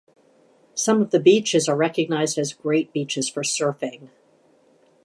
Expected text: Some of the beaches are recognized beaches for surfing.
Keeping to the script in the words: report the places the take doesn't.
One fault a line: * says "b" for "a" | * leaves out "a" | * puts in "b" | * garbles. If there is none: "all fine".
* puts in "as great"